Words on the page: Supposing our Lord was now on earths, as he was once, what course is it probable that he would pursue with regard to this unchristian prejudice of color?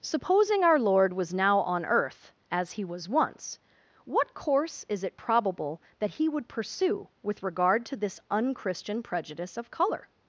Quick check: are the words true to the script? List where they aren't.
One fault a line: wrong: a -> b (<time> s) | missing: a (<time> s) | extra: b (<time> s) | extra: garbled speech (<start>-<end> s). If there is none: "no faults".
wrong: earths -> earth (1.9 s)